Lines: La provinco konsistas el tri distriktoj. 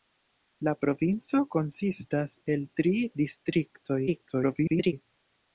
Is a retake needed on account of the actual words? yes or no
yes